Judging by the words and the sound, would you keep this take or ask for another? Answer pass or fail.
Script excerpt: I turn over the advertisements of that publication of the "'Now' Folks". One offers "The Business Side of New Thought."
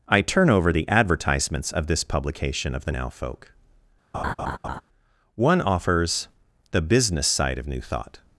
fail